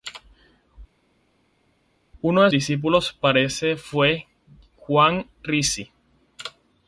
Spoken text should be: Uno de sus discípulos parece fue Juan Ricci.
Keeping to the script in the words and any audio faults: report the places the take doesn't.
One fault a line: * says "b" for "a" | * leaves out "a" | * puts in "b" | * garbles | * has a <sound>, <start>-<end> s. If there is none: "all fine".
* leaves out "sus"